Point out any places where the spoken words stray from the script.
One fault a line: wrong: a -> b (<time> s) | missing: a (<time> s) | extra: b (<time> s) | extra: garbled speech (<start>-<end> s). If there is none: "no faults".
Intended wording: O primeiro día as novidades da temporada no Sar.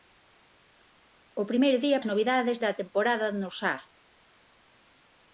no faults